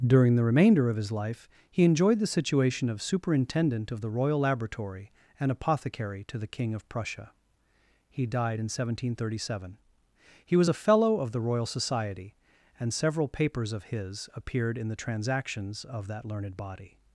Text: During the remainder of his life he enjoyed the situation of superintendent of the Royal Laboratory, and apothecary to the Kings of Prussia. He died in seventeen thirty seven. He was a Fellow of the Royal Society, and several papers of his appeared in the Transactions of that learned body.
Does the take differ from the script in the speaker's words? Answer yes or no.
yes